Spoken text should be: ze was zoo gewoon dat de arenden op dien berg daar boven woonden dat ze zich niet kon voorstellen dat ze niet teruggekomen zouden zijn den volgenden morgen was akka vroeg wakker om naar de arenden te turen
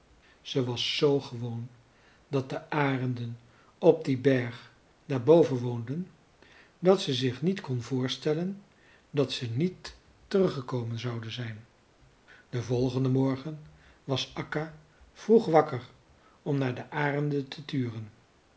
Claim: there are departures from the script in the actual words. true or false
false